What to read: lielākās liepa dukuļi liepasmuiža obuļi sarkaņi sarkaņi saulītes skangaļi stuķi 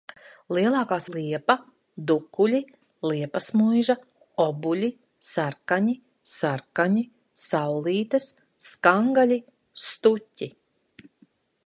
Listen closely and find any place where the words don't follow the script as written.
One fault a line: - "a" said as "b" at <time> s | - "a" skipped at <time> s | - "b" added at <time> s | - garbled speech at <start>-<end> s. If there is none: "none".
none